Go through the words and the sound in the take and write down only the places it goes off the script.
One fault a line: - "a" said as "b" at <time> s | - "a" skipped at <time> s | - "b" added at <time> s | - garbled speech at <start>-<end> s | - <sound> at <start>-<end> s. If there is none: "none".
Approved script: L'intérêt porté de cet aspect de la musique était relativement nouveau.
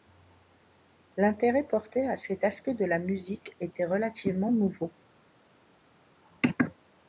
- "de" said as "à" at 2.1 s